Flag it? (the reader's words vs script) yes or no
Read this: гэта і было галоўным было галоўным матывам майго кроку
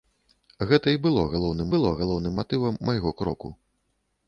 no